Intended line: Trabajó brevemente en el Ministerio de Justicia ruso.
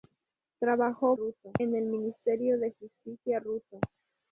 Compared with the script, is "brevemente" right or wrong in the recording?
wrong